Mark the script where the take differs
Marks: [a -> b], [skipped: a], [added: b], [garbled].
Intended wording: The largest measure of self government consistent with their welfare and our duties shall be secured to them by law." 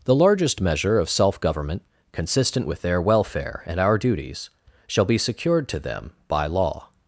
The largest measure of self government consistent with their welfare and our duties shall be secured to them by law."